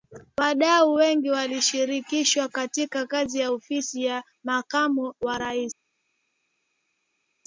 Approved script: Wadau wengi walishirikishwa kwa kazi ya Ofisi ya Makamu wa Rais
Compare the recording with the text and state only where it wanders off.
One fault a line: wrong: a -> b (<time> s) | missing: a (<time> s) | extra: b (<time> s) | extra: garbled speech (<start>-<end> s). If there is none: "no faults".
wrong: kwa -> katika (2.5 s)